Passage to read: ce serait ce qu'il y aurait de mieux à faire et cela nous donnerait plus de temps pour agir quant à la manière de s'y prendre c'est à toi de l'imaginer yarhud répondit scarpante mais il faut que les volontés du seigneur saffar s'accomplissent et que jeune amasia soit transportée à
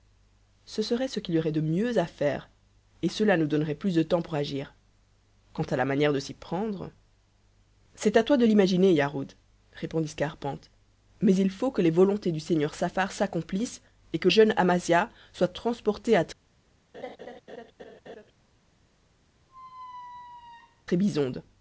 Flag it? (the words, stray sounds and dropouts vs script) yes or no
yes